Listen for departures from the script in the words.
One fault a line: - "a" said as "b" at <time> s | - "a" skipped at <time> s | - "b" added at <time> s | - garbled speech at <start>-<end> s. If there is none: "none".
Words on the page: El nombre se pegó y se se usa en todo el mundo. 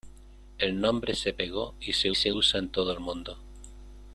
none